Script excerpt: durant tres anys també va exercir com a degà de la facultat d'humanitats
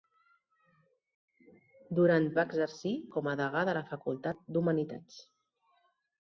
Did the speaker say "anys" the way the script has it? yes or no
no